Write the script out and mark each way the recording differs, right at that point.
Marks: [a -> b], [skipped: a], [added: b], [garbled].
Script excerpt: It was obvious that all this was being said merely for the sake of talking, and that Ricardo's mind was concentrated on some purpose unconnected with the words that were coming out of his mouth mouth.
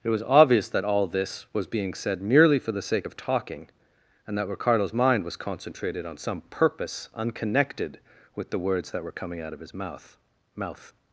It was obvious that all this was being said merely for the sake of talking, and that Ricardo's mind was concentrated on some purpose unconnected with the words that were coming out of his mouth mouth.